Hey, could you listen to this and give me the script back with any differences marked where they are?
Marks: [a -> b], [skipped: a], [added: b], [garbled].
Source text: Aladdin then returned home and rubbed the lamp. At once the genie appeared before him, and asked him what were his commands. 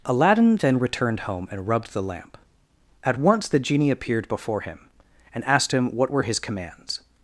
Aladdin then returned home and rubbed the lamp. At once the genie appeared before him, and asked him what were his commands.